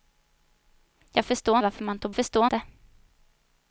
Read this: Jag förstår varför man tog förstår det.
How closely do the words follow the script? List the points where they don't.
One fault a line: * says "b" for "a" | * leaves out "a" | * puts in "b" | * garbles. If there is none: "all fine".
all fine